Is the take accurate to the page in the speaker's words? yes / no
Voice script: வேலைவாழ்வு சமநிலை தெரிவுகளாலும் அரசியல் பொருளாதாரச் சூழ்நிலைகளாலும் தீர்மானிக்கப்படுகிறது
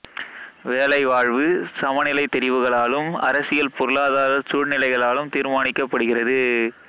yes